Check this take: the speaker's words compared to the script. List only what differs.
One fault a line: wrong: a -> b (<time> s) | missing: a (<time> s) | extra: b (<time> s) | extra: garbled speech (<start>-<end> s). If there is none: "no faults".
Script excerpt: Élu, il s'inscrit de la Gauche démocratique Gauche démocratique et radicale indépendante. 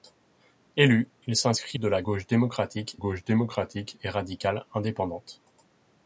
no faults